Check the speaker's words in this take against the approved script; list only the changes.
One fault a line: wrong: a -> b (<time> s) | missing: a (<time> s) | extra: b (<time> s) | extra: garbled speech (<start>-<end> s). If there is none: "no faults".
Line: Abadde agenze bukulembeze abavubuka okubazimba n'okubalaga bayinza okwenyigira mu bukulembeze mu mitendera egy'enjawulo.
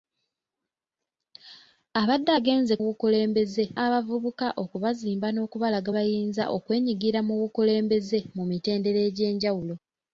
no faults